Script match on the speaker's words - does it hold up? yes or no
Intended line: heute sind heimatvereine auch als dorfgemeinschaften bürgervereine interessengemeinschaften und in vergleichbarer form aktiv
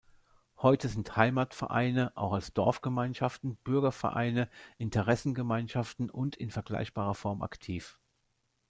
yes